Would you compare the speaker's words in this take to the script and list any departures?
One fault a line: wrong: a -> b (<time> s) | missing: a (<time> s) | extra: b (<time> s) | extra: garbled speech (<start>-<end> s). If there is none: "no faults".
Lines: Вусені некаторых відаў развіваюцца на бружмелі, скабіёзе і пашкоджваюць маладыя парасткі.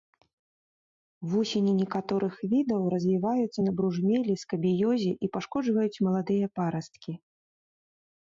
no faults